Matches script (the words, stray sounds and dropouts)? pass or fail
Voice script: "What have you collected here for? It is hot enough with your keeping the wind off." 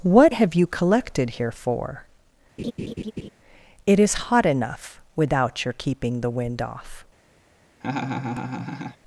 fail